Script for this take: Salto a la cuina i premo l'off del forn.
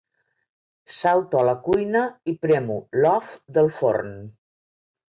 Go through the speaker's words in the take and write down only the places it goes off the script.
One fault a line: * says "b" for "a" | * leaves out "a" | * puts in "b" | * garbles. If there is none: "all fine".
all fine